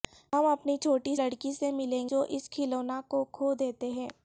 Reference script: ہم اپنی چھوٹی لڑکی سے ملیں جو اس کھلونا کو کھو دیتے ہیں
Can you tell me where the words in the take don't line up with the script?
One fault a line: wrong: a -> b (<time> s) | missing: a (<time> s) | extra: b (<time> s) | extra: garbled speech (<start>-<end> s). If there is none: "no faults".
no faults